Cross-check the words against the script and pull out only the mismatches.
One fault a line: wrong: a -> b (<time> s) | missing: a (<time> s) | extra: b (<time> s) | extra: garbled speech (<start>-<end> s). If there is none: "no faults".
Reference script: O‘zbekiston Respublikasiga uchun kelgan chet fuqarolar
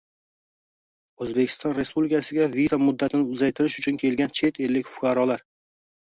extra: viza muddatini uzaytirish (2.5 s)
extra: ellik (4.7 s)